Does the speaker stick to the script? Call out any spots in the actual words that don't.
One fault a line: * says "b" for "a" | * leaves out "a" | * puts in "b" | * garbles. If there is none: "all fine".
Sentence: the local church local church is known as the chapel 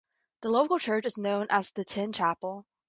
* leaves out "local church"
* puts in "tin"